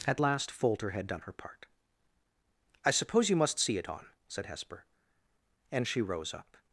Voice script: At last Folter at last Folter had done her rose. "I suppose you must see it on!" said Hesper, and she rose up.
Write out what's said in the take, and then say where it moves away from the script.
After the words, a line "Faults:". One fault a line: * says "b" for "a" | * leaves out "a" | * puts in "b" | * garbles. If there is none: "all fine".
At last Folter had done her part. "I suppose you must see it on!" said Hesper, and she rose up.
Faults:
* leaves out "at last Folter"
* says "part" for "rose"